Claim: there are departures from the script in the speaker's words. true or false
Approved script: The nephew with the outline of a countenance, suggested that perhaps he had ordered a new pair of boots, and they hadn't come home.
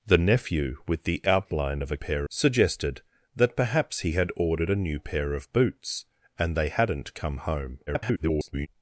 true